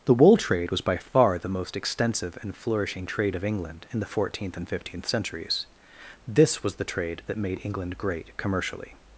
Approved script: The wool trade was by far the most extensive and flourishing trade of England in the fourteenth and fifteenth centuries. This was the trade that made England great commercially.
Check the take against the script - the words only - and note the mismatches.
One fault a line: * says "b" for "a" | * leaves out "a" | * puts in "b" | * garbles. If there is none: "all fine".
all fine